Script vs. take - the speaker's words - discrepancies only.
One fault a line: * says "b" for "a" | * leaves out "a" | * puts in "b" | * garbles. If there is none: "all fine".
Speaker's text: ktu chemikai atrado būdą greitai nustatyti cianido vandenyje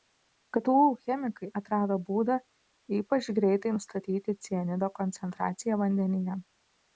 * puts in "ypač"
* puts in "koncentraciją"